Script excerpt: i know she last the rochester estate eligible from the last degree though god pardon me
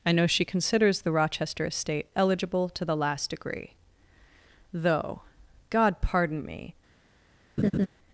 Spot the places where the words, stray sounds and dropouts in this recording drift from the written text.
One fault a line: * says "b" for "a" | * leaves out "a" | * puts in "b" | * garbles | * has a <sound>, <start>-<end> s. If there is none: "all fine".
* says "considers" for "last"
* says "to" for "from"
* has a laugh, 7.6-7.9 s